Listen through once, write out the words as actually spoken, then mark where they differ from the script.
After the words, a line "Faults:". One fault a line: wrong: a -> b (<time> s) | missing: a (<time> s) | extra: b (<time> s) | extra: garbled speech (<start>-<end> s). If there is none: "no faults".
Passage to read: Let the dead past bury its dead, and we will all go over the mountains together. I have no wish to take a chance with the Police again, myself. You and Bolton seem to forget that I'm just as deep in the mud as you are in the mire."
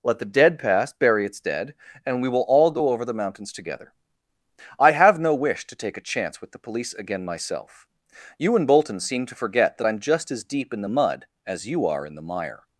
Let the dead past bury its dead, and we will all go over the mountains together. I have no wish to take a chance with the Police again, myself. You and Bolton seem to forget that I'm just as deep in the mud as you are in the mire."
Faults:
no faults